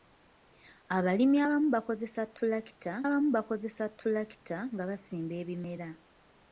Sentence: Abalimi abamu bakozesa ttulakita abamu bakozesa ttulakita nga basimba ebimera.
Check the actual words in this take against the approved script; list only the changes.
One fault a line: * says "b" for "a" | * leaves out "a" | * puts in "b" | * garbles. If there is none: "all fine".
all fine